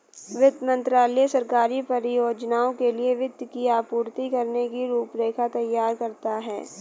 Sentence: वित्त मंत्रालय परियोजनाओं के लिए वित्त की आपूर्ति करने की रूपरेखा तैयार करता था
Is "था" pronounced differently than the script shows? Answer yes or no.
yes